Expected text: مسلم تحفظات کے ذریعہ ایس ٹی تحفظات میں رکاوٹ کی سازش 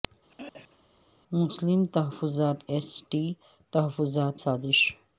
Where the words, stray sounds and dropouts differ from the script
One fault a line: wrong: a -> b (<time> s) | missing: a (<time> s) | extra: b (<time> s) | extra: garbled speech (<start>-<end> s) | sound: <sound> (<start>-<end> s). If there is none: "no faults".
sound: throat clearing (0.3-0.8 s)
missing: کے ذریعہ (2.6 s)
missing: میں رکاوٹ کی (4.4 s)